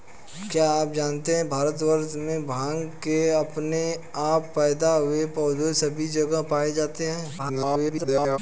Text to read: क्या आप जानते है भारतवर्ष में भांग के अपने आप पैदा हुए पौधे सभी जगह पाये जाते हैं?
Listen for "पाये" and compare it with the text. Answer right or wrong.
right